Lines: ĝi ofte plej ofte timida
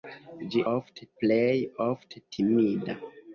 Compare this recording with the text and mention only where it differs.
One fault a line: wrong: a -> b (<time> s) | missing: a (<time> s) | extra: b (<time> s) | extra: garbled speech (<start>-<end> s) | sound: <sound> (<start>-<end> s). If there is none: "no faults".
no faults